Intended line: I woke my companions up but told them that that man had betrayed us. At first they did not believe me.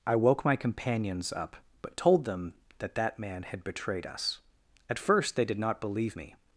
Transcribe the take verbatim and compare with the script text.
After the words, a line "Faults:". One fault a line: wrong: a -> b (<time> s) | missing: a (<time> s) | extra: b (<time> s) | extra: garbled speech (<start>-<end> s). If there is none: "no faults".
I woke my companions up but told them that that man had betrayed us. At first they did not believe me.
Faults:
no faults